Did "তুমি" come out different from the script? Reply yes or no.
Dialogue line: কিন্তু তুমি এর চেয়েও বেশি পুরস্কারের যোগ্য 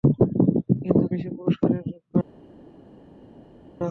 yes